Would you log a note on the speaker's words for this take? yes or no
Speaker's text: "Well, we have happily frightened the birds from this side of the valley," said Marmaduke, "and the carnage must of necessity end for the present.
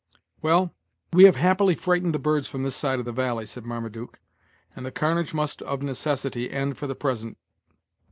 no